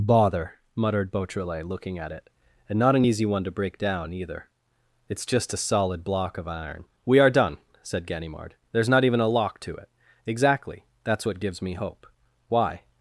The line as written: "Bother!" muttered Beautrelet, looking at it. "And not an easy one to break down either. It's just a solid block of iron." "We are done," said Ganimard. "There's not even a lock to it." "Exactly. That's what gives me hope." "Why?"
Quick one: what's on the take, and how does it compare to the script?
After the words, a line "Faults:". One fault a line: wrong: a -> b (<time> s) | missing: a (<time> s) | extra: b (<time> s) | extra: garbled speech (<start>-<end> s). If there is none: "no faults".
"Bother!" muttered Beautrelet, looking at it. "And not an easy one to break down either. It's just a solid block of iron." "We are done," said Ganimard. "There's not even a lock to it." "Exactly. That's what gives me hope." "Why?"
Faults:
no faults